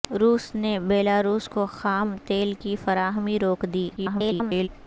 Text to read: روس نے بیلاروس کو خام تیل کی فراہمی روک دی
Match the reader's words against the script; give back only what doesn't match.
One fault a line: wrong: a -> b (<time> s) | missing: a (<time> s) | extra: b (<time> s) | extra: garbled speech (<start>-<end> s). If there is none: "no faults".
extra: garbled speech (4.0-4.7 s)